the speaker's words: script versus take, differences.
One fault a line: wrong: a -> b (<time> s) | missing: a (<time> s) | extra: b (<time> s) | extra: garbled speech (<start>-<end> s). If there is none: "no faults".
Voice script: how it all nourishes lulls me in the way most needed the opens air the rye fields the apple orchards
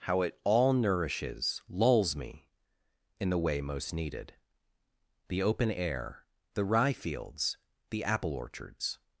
wrong: opens -> open (5.4 s)